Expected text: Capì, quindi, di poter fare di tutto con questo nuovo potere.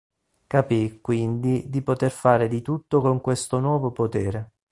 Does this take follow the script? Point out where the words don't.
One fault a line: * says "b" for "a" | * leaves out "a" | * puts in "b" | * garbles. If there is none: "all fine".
all fine